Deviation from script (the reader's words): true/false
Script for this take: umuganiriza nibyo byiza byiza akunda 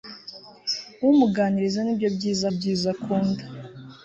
false